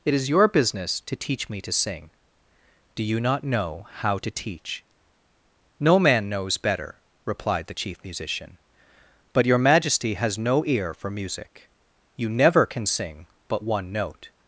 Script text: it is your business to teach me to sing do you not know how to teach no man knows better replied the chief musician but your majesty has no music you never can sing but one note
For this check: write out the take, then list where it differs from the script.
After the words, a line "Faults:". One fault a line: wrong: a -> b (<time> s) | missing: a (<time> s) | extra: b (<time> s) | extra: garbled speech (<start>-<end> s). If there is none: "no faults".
it is your business to teach me to sing do you not know how to teach no man knows better replied the chief musician but your majesty has no ear for music you never can sing but one note
Faults:
extra: ear for (10.7 s)